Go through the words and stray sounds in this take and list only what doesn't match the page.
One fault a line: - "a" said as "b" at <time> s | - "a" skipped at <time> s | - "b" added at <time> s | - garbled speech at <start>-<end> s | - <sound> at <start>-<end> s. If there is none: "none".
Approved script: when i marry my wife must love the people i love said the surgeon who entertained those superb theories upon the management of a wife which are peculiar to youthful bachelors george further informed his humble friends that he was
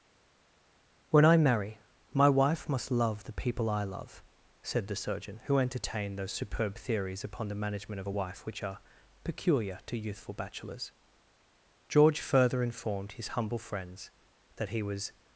none